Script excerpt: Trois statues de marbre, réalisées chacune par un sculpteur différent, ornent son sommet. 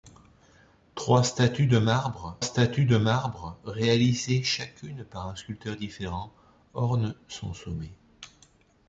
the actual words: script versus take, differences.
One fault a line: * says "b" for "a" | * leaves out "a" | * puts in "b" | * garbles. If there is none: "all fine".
* puts in "statues de marbre"